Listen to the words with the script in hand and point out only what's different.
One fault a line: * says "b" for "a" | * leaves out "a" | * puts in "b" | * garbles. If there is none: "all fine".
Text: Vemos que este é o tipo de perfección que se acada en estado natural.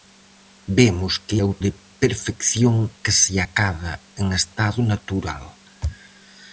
* leaves out "este"
* leaves out "tipo"